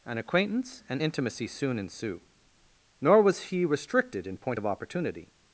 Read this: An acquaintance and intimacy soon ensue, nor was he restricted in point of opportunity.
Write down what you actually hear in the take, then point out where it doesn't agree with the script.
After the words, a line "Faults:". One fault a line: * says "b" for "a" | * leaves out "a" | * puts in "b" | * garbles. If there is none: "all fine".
An acquaintance and intimacy soon ensue, nor was he restricted in point of opportunity.
Faults:
all fine